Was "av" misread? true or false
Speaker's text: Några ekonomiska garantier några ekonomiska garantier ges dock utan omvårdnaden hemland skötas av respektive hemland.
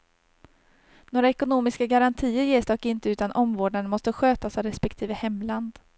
false